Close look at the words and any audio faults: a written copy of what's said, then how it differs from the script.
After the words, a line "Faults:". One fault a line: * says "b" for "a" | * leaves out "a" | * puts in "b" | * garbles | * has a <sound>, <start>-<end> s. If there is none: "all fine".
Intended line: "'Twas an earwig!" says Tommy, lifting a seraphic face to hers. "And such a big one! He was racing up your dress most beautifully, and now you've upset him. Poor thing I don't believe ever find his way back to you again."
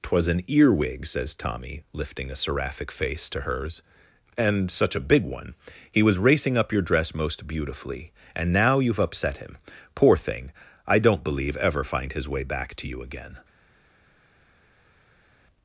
"'Twas an earwig!" says Tommy, lifting a seraphic face to hers. "And such a big one! He was racing up your dress most beautifully, and now you've upset him. Poor thing I don't believe ever find his way back to you again."
Faults:
all fine